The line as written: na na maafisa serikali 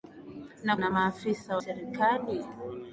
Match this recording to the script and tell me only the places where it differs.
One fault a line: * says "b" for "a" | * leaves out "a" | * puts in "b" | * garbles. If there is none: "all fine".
all fine